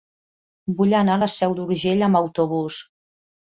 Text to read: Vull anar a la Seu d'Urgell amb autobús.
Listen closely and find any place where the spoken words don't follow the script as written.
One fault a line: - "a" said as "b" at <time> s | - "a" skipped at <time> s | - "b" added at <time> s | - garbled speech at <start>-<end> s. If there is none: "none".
none